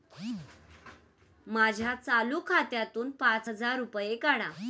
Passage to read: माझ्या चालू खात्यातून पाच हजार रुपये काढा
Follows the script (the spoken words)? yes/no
yes